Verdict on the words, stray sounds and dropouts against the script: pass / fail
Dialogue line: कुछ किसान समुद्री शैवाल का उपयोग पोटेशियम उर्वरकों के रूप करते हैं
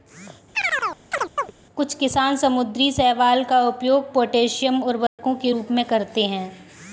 fail